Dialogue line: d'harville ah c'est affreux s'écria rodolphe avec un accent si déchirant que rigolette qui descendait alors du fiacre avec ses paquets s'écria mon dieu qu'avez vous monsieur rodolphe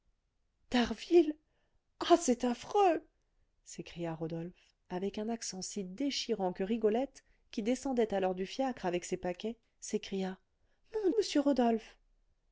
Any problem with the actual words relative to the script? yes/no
yes